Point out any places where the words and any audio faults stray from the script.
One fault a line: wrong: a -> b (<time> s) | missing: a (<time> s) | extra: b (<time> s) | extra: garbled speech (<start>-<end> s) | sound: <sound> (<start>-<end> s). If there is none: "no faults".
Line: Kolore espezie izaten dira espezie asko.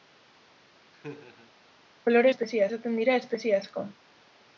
sound: laugh (0.9-1.5 s)